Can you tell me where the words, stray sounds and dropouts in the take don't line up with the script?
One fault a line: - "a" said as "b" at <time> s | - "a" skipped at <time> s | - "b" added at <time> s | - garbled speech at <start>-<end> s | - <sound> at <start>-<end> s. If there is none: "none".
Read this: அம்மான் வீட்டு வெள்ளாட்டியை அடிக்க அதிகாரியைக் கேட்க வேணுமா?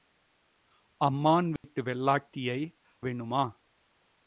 - dropout at 1.6-1.6 s
- "அடிக்க அதிகாரியைக் கேட்க" skipped at 2.6 s